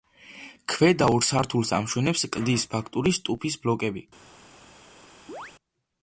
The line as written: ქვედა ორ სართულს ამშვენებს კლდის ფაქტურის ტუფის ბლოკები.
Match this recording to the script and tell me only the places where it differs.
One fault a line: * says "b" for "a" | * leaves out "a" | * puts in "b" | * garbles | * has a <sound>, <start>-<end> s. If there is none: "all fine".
* has a chirp, 5.3-5.5 s